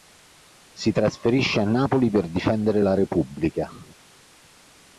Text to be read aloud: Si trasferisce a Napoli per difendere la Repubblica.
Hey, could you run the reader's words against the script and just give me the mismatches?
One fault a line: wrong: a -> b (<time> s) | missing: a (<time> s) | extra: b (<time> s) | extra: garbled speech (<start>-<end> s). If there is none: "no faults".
no faults